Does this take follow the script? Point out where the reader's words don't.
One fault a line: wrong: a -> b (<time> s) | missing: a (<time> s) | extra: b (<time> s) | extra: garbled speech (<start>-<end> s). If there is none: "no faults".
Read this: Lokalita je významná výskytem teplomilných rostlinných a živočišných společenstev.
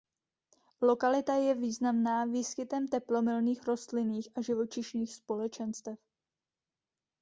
no faults